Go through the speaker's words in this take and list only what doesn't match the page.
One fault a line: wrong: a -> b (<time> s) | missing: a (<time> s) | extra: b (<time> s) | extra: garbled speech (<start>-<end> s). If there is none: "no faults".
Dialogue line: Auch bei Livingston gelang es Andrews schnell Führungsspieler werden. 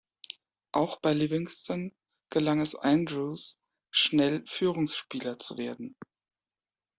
extra: zu (5.4 s)